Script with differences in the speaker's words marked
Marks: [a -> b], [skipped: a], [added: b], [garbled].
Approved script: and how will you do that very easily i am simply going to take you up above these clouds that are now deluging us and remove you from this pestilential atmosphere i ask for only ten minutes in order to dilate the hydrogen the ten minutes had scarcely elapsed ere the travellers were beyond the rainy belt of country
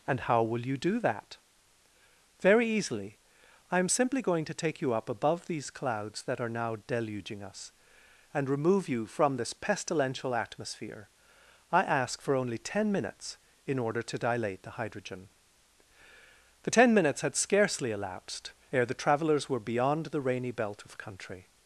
and how will you do that very easily i am simply going to take you up above these clouds that are now deluging us and remove you from this pestilential atmosphere i ask for only ten minutes in order to dilate the hydrogen the ten minutes had scarcely elapsed ere the travellers were beyond the rainy belt of country